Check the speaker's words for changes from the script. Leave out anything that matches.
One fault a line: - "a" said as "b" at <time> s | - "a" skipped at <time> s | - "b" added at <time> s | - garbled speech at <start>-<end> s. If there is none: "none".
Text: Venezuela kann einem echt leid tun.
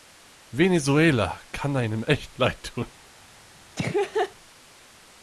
none